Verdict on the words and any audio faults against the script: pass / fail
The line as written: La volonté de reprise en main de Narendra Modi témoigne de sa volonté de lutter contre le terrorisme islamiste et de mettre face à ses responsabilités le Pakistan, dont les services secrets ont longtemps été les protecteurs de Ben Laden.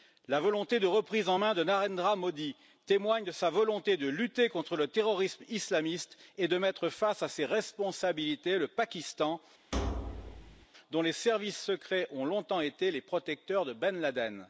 fail